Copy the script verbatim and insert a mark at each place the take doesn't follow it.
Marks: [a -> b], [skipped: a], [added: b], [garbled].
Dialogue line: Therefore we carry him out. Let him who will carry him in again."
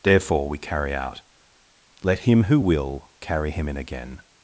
Therefore we carry [skipped: him] out. Let him who will carry him in again."